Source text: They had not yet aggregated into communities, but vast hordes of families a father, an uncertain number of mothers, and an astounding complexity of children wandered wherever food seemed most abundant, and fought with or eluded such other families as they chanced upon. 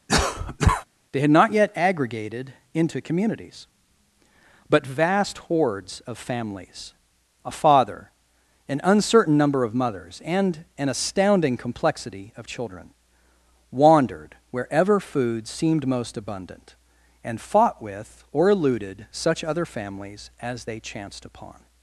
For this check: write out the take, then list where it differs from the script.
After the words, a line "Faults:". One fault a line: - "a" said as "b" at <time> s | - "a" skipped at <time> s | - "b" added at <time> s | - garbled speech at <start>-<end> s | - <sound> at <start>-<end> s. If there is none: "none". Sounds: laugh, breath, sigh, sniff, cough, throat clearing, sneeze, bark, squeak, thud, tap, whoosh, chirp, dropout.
They had not yet aggregated into communities, but vast hordes of families a father, an uncertain number of mothers, and an astounding complexity of children wandered wherever food seemed most abundant, and fought with or eluded such other families as they chanced upon.
Faults:
- cough at 0.1-0.8 s